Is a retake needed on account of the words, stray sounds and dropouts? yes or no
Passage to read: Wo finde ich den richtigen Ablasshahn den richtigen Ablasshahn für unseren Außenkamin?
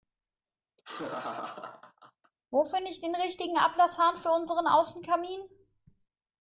yes